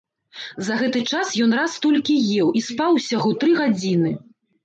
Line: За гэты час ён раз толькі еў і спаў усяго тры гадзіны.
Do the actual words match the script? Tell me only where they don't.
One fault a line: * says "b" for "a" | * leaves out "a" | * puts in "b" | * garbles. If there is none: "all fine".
all fine